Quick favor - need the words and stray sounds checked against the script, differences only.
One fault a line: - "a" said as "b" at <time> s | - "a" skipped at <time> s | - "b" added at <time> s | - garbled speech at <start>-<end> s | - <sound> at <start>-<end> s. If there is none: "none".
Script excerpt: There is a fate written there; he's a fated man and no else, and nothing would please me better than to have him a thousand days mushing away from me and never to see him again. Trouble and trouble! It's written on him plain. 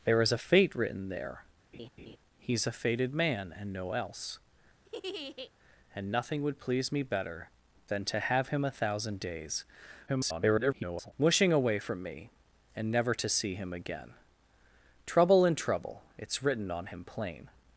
- laugh at 1.7-2.2 s
- laugh at 4.9-5.5 s
- garbled speech at 10.1-11.1 s